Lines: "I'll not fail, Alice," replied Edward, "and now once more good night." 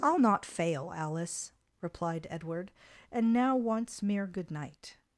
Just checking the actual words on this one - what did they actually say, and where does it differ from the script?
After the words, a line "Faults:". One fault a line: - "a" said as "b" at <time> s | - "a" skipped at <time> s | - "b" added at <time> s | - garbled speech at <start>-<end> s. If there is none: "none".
"I'll not fail, Alice," replied Edward, "and now once mere good night."
Faults:
- "more" said as "mere" at 4.0 s